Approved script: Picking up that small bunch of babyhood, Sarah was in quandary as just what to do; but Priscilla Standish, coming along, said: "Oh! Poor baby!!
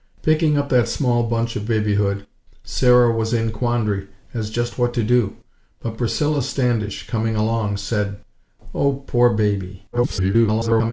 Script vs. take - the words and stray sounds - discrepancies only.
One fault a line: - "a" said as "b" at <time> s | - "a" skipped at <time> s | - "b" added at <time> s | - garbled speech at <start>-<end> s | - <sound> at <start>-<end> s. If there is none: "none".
- garbled speech at 9.9-10.9 s